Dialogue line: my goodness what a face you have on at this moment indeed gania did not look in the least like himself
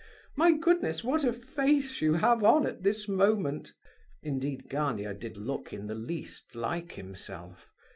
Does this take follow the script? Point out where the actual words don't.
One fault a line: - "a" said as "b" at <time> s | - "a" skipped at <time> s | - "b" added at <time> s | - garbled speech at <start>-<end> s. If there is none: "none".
- "not" skipped at 5.4 s